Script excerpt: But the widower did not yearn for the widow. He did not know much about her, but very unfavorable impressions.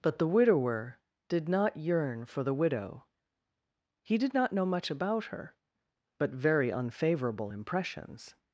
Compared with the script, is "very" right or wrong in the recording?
right